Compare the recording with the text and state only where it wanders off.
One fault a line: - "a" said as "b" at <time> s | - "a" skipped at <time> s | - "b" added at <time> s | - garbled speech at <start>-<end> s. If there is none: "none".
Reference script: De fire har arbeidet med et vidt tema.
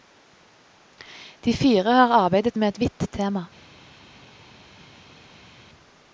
none